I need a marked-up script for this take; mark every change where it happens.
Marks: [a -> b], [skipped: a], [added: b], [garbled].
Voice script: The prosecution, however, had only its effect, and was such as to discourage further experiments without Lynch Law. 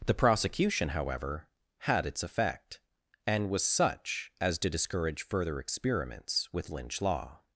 The prosecution, however, had [skipped: only] its effect, and was such as to discourage further experiments [without -> with] Lynch Law.